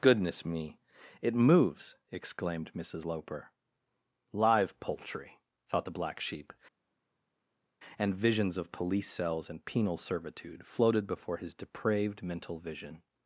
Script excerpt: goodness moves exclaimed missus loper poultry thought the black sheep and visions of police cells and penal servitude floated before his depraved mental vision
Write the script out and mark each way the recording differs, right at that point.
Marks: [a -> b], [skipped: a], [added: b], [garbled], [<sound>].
goodness [added: me it] moves exclaimed missus loper [added: live] poultry thought the black sheep and visions of police cells and penal servitude floated before his depraved mental vision